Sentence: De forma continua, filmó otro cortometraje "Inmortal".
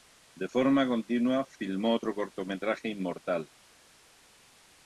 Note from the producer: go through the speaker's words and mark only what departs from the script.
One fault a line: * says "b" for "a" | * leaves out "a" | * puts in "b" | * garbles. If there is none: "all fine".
all fine